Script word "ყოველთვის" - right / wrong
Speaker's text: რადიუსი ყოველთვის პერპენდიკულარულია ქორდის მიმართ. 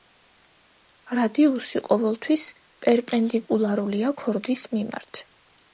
right